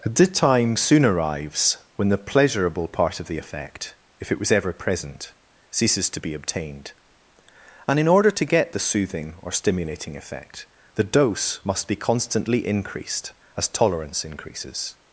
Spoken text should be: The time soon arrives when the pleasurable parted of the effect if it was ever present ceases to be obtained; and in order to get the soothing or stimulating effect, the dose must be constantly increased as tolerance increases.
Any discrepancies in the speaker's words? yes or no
yes